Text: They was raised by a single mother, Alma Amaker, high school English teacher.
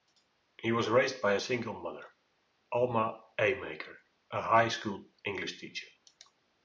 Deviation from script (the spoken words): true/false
true